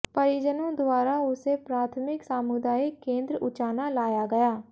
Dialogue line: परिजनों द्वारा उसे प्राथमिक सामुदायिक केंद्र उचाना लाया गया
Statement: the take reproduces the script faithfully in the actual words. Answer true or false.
true